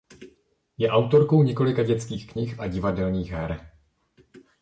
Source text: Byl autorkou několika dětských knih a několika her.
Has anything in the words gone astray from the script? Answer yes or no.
yes